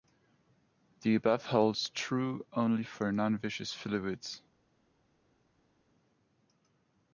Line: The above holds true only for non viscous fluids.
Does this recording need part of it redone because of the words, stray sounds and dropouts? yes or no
no